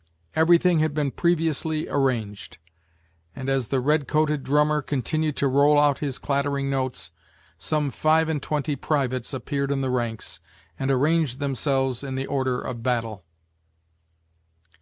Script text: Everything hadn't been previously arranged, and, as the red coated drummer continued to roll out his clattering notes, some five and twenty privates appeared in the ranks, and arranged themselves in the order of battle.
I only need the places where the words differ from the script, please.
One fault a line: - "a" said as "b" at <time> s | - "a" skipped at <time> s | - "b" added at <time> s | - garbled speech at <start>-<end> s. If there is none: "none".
- "hadn't" said as "had" at 0.8 s